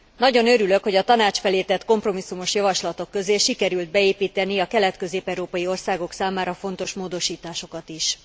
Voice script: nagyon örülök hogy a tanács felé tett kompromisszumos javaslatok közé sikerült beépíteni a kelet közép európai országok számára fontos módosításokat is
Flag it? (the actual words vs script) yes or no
no